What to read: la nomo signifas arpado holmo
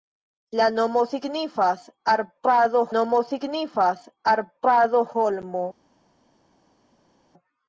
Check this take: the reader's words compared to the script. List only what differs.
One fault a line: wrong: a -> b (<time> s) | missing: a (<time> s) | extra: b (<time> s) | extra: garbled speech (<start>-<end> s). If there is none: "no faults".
extra: nomo signifas arpado (2.9 s)